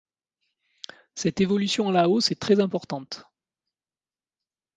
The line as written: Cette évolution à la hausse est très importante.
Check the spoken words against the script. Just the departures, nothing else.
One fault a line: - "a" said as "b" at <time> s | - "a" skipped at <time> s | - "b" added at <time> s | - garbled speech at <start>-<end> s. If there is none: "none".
none